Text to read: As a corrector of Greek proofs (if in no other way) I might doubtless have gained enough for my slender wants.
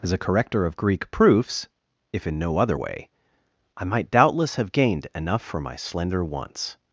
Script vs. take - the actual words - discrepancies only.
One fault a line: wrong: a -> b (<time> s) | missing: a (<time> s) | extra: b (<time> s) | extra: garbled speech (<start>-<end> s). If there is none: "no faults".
no faults